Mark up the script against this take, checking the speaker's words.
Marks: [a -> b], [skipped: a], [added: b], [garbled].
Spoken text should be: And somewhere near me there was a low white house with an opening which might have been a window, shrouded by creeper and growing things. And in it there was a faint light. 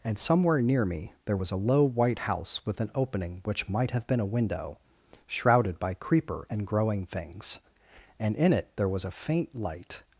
And somewhere near me there was a low white house with an opening which might have been a window, shrouded by creeper and growing things. And in it there was a faint light.